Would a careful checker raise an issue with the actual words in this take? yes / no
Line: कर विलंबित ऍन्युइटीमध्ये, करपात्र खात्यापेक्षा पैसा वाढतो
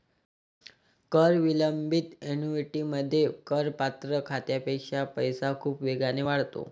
yes